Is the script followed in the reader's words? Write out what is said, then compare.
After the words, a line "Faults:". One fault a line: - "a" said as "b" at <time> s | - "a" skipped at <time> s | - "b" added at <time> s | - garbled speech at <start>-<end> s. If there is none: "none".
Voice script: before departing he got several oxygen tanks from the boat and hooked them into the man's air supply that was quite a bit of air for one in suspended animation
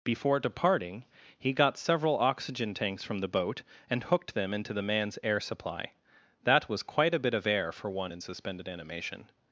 before departing he got several oxygen tanks from the boat and hooked them into the man's air supply that was quite a bit of air for one in suspended animation
Faults:
none